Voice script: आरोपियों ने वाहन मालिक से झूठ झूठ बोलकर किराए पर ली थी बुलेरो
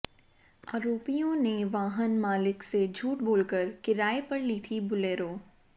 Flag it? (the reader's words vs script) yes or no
yes